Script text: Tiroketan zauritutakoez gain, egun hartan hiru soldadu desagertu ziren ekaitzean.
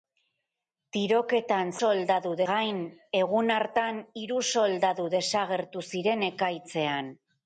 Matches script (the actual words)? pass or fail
fail